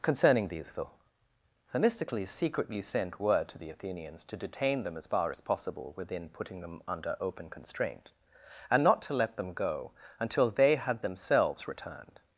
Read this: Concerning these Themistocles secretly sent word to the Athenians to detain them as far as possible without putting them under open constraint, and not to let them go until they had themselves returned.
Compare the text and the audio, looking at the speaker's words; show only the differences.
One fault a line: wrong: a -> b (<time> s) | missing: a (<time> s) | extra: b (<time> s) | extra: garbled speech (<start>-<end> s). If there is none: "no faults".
wrong: without -> within (5.9 s)